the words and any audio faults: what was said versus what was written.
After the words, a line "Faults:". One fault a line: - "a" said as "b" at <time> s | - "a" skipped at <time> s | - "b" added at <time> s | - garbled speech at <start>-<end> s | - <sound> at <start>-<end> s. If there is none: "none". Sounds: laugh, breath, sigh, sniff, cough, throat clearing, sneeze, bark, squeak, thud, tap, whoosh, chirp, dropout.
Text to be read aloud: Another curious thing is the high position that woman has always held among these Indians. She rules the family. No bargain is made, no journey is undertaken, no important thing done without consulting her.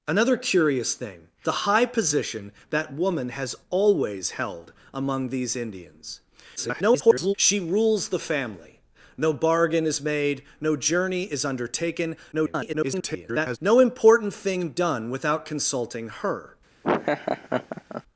Another curious thing the high position that woman has always held among these Indians. [garbled] She rules the family. No bargain is made, no journey is undertaken, [garbled] no important thing done without consulting her.
Faults:
- "is" skipped at 1.3 s
- garbled speech at 6.6-7.3 s
- garbled speech at 12.3-13.6 s
- laugh at 16.8-18.0 s